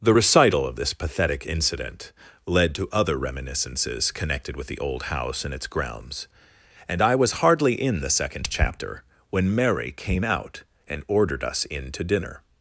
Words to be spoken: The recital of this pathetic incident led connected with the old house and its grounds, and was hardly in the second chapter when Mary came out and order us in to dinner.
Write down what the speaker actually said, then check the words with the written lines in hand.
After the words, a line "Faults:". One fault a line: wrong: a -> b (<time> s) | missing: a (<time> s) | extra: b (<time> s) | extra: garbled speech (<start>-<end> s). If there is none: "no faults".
The recital of this pathetic incident led to other reminiscences connected with the old house and its grounds, and I was hardly in the second chapter when Mary came out and ordered us in to dinner.
Faults:
extra: to other reminiscences (2.7 s)
extra: I (7.0 s)
wrong: order -> ordered (11.1 s)